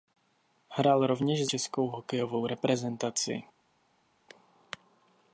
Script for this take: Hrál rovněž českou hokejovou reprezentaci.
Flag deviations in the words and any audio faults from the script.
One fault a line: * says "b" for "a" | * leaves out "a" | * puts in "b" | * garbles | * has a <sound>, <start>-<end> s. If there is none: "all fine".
all fine